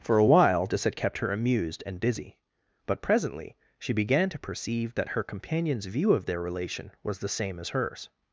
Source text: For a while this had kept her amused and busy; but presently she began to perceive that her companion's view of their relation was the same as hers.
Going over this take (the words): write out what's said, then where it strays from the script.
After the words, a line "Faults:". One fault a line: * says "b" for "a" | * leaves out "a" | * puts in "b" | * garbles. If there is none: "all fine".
For a while this had kept her amused and busy; but presently she began to perceive that her companion's view of their relation was the same as hers.
Faults:
all fine